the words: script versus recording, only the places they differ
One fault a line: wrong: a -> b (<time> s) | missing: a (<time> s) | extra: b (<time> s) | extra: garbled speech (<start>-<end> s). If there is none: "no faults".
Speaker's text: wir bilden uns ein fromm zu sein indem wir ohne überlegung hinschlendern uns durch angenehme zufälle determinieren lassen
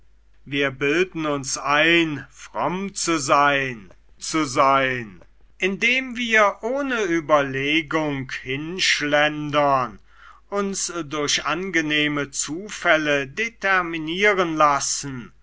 extra: zu sein (4.2 s)